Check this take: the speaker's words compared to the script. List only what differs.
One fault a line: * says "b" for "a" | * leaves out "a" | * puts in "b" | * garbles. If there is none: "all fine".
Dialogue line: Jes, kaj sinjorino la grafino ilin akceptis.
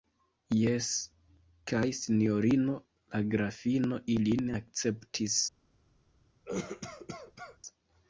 all fine